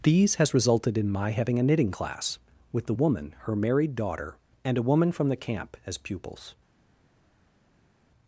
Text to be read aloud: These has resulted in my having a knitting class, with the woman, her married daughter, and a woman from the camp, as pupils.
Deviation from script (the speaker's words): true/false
false